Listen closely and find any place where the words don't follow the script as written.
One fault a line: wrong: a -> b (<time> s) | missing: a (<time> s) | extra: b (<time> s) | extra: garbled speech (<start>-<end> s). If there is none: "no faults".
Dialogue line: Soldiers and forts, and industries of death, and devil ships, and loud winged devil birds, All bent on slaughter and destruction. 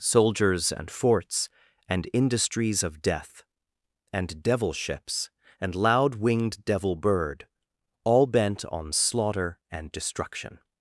wrong: birds -> bird (7.0 s)